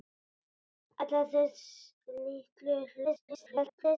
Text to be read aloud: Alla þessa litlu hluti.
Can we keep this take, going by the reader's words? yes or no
no